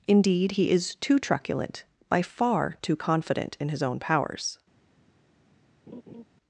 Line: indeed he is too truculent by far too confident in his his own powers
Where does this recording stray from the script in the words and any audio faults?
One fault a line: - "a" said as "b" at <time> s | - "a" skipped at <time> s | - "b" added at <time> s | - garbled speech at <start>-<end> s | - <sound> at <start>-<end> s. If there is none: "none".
- "his" skipped at 3.8 s
- laugh at 5.9-6.2 s